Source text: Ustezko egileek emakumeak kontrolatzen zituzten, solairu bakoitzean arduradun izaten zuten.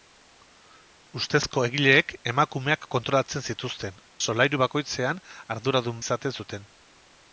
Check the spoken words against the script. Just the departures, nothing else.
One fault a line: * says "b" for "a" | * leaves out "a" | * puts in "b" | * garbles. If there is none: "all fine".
all fine